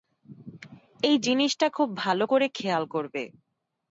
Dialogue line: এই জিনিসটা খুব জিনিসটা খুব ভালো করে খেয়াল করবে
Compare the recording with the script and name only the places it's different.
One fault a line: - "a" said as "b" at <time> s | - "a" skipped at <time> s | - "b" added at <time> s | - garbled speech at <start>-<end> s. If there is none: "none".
- "জিনিসটা খুব" skipped at 1.9 s